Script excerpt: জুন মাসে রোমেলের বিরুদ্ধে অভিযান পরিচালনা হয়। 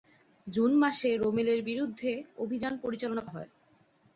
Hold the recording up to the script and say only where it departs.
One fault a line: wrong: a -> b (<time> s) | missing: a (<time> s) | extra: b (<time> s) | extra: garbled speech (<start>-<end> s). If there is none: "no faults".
no faults